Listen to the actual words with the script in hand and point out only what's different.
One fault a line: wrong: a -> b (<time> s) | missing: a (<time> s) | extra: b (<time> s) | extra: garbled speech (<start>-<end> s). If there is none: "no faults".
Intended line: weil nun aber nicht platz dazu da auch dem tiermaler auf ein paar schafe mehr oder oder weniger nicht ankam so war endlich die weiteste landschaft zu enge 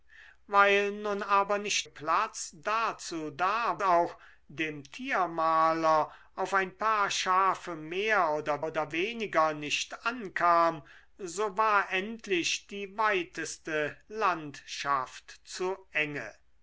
no faults